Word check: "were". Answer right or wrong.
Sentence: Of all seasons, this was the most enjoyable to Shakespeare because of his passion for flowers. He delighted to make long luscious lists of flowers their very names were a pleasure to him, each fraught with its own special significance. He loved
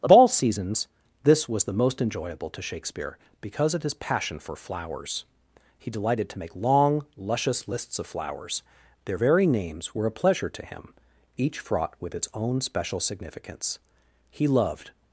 right